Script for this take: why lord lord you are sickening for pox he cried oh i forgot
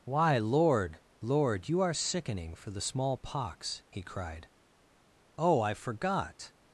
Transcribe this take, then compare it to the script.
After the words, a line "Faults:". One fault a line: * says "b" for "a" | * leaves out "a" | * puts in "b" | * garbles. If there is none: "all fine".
why lord lord you are sickening for the small pox he cried oh i forgot
Faults:
* puts in "the small"